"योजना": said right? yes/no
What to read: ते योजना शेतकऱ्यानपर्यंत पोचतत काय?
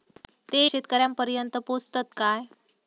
no